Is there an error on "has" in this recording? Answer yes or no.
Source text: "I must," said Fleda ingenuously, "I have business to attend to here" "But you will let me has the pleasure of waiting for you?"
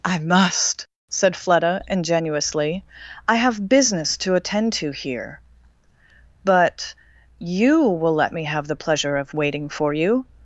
yes